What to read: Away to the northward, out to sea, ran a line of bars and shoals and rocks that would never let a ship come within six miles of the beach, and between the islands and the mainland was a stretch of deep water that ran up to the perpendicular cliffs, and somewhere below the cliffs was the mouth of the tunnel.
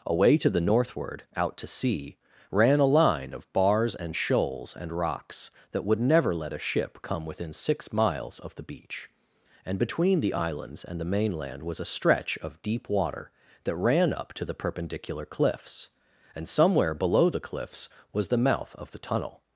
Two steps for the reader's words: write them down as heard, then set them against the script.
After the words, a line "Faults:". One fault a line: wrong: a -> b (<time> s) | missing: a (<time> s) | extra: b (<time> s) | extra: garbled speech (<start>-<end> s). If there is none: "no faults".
Away to the northward, out to sea, ran a line of bars and shoals and rocks that would never let a ship come within six miles of the beach, and between the islands and the mainland was a stretch of deep water that ran up to the perpendicular cliffs, and somewhere below the cliffs was the mouth of the tunnel.
Faults:
no faults